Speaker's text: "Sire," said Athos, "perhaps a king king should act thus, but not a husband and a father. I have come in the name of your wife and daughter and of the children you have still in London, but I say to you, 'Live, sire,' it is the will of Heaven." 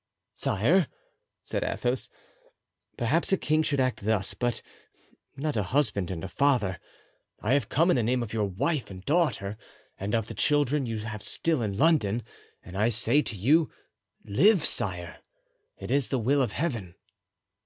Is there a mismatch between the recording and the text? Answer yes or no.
yes